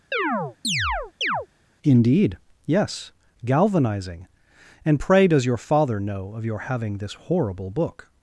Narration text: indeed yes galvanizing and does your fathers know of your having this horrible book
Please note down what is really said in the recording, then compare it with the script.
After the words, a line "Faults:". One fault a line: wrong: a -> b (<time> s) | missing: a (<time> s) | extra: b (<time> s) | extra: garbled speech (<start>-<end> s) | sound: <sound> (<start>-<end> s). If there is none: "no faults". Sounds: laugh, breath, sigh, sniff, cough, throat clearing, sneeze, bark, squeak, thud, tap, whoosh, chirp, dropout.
indeed yes galvanizing and pray does your father know of your having this horrible book
Faults:
sound: chirp (0.1-1.5 s)
extra: pray (5.0 s)
wrong: fathers -> father (5.6 s)